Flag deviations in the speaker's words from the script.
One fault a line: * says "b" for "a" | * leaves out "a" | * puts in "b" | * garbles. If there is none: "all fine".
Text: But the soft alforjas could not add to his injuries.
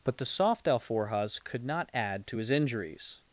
all fine